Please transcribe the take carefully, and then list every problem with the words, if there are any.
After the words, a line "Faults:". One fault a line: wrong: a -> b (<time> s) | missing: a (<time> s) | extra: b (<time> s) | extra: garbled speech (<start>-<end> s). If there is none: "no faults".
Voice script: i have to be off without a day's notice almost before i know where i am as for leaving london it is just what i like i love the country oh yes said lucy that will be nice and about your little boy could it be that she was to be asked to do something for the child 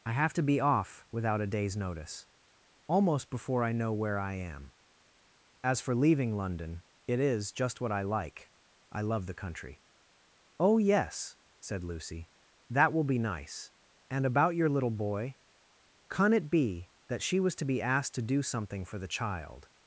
i have to be off without a day's notice almost before i know where i am as for leaving london it is just what i like i love the country oh yes said lucy that will be nice and about your little boy can it be that she was to be asked to do something for the child
Faults:
wrong: could -> can (16.1 s)